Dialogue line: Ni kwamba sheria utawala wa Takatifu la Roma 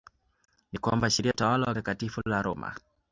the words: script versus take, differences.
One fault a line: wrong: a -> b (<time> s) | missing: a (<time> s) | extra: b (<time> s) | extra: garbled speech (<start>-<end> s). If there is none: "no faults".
no faults